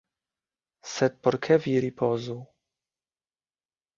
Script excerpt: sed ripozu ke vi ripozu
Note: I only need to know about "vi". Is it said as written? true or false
true